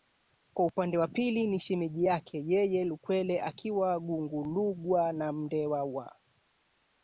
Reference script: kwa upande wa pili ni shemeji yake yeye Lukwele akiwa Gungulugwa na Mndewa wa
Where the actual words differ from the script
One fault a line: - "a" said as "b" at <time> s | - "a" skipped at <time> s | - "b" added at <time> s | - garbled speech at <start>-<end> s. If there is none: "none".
none